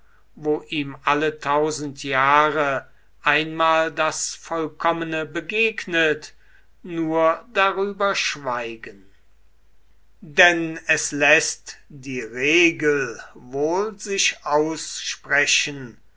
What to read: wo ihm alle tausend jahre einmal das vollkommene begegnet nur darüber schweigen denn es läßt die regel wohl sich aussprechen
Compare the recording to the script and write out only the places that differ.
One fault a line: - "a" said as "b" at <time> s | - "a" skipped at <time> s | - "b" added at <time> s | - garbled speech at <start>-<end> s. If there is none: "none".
none